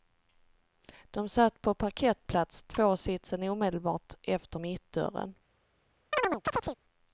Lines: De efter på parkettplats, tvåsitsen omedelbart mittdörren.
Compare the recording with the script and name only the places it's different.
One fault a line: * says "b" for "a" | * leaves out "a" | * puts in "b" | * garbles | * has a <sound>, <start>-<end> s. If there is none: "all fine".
* says "satt" for "efter"
* puts in "efter"
* has a chirp, 6.1-6.8 s